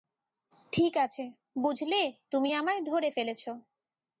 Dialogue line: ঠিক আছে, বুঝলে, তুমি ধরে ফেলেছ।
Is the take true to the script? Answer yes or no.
no